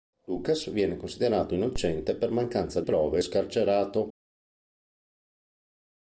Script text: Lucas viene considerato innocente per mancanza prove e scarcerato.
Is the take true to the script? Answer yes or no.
yes